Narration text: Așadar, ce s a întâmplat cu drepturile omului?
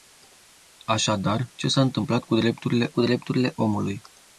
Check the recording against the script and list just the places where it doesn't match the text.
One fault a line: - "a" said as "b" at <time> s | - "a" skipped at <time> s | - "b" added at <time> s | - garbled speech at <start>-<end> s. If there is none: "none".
- "cu drepturile" added at 2.9 s